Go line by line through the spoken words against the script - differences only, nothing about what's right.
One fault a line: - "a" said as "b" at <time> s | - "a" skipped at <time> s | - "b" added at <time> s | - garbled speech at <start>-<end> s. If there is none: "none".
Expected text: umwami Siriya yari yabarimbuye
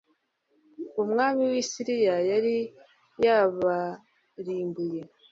- "w'i" added at 1.5 s